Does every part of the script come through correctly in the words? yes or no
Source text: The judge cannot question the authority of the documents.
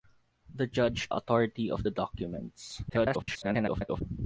no